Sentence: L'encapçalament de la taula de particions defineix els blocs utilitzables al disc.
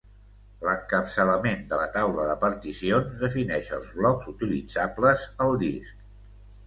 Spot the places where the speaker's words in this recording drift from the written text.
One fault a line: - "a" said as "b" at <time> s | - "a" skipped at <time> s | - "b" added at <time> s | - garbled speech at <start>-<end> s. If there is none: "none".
none